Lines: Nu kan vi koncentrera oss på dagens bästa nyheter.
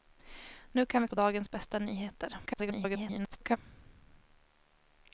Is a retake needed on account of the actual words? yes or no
yes